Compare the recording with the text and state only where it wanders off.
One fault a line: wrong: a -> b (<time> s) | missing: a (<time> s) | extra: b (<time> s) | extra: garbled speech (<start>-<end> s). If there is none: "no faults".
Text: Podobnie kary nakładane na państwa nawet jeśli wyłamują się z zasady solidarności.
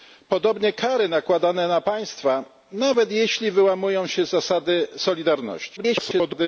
extra: garbled speech (5.8-6.5 s)